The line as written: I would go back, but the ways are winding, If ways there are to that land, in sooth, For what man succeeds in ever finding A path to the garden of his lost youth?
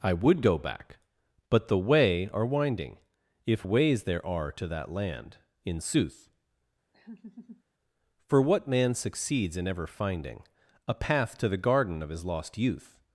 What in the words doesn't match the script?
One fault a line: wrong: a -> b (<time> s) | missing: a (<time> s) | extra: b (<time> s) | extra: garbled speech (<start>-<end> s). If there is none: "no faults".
wrong: ways -> way (1.8 s)